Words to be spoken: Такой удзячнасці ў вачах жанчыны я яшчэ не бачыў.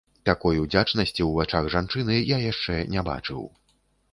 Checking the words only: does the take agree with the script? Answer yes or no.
yes